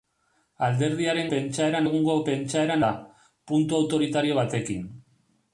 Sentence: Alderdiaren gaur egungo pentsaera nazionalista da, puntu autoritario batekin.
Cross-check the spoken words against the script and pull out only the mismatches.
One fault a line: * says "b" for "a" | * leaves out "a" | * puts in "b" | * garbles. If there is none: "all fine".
* says "pentsaera" for "gaur"
* leaves out "nazionalista"